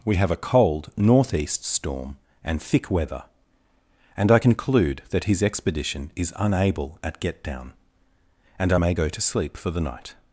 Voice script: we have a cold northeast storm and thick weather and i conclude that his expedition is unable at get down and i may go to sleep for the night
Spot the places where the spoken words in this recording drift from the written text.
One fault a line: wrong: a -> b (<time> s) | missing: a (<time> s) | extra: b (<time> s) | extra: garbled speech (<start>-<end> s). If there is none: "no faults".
no faults